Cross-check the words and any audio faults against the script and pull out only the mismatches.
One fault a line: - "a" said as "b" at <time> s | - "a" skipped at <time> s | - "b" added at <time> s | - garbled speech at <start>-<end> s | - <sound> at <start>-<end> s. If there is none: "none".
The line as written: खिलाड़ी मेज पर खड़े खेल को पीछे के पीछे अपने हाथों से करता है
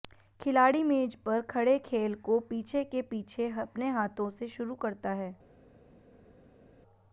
- "शुरू" added at 4.5 s